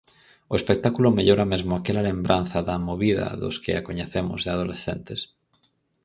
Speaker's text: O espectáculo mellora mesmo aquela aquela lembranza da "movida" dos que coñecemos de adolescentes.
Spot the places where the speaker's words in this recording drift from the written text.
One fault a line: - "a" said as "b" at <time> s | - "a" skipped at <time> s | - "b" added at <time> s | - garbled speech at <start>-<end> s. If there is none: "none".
- "aquela" skipped at 2.0 s
- "a" added at 3.8 s